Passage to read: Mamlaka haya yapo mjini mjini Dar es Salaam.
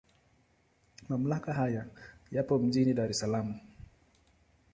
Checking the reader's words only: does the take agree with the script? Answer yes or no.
no